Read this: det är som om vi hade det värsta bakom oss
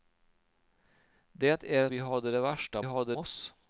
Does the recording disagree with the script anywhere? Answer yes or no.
yes